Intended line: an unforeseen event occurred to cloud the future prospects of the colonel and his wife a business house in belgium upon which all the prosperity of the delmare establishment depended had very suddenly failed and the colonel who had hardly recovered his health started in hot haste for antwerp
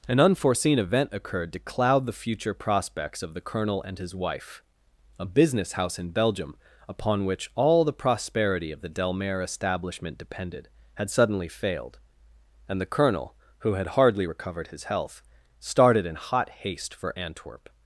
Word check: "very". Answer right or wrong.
wrong